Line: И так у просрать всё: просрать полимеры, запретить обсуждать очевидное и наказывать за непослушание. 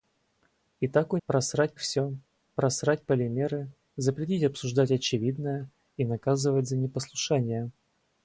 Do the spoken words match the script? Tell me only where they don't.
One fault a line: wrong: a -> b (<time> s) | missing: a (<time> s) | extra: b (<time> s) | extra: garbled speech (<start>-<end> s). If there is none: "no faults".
no faults